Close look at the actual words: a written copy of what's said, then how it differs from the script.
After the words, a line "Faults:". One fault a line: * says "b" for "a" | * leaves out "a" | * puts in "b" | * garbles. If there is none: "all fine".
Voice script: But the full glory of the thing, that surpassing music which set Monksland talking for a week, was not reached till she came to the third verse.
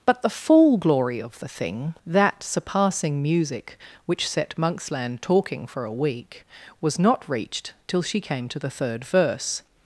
But the full glory of the thing, that surpassing music which set Monksland talking for a week, was not reached till she came to the third verse.
Faults:
all fine